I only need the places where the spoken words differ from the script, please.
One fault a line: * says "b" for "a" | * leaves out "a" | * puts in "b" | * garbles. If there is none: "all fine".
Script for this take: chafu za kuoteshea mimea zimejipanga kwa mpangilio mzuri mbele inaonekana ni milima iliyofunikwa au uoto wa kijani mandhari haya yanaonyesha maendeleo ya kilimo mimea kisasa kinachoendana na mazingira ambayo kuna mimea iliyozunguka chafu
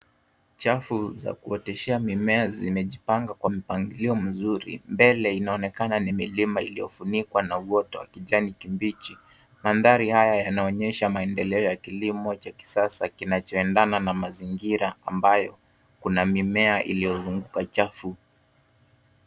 * says "na" for "au"
* puts in "kibichi"
* says "cha" for "mimea"